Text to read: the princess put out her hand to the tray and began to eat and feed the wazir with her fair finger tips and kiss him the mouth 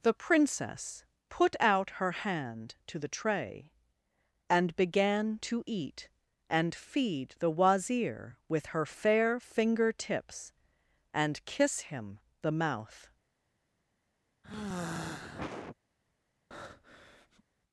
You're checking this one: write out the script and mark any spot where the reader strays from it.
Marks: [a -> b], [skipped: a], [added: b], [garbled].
the princess put out her hand to the tray and began to eat and feed the wazir with her fair finger tips and kiss him the mouth